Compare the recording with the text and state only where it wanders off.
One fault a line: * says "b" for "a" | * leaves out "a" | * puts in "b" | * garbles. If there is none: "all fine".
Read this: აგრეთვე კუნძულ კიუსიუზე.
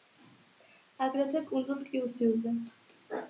all fine